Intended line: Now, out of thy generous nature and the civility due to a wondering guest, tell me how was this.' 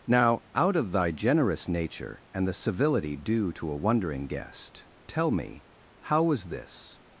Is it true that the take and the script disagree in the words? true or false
false